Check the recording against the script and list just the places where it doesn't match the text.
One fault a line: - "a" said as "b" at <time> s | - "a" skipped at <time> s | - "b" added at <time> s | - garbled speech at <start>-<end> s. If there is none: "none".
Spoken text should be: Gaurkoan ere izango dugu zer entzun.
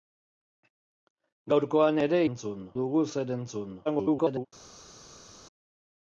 - "izango" said as "entzun" at 2.3 s
- garbled speech at 3.8-4.5 s